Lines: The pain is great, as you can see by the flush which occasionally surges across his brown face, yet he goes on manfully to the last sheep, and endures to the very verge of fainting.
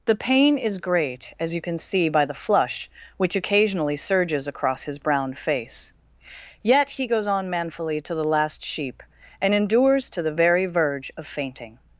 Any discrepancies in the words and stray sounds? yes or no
no